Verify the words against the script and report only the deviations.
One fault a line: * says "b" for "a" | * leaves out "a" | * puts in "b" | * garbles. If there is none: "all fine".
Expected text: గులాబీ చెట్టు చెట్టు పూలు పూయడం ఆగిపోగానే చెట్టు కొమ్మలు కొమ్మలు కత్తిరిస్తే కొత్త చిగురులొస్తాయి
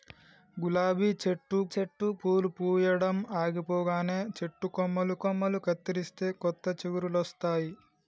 all fine